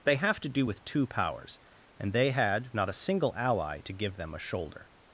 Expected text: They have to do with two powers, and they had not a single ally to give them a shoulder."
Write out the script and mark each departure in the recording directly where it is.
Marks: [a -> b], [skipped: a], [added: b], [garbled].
They have to do with two powers, and they had not a single ally to give them a shoulder."